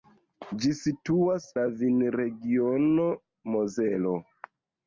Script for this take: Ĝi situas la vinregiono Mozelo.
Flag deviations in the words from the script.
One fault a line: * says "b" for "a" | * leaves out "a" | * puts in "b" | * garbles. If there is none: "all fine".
all fine